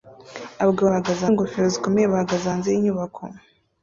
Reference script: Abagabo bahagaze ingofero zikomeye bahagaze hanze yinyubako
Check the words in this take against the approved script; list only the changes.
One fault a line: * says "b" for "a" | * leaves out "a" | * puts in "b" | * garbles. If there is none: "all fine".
all fine